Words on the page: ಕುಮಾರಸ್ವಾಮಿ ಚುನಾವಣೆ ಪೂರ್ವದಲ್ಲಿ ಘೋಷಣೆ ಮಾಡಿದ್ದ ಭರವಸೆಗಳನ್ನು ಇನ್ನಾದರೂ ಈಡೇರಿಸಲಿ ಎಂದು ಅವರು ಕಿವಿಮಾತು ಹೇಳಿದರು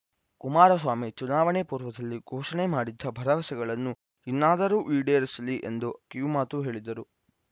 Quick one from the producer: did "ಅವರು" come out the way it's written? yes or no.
no